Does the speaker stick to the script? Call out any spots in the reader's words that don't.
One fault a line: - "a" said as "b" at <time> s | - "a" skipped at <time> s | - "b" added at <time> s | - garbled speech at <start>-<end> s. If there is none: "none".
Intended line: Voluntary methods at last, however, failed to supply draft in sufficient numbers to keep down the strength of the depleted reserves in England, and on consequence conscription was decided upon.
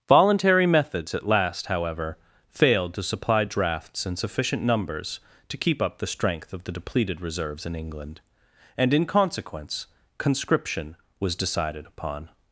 - "draft" said as "drafts" at 3.4 s
- "down" said as "up" at 5.8 s
- "on" said as "in" at 8.9 s